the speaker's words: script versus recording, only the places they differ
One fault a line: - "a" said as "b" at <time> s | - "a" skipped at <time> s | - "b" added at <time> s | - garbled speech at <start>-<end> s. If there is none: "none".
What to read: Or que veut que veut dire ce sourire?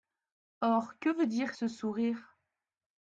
- "que veut" skipped at 1.3 s